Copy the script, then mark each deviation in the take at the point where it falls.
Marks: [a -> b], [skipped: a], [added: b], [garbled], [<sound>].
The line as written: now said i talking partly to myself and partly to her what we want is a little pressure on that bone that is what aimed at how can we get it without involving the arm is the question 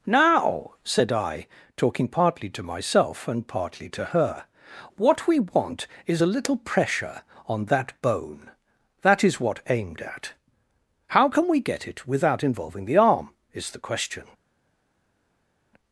now said i talking partly to myself and partly to her what we want is a little pressure on that bone that is what aimed at how can we get it without involving the arm is the question